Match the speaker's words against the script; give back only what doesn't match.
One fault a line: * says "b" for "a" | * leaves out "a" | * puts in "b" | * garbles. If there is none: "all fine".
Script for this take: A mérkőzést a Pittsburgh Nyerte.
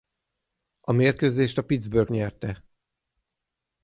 all fine